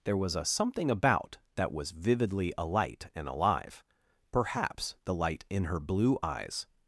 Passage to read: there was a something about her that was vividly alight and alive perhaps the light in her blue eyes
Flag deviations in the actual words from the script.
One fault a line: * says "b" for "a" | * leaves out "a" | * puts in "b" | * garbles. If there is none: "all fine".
* leaves out "her"